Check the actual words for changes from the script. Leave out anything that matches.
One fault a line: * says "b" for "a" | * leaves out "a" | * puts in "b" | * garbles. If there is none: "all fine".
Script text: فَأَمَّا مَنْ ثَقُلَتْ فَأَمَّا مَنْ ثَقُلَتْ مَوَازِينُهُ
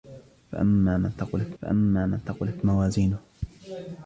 all fine